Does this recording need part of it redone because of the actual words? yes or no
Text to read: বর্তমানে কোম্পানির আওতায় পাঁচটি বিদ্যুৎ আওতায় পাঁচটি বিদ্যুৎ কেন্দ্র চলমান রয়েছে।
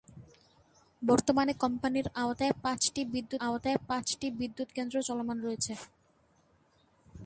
no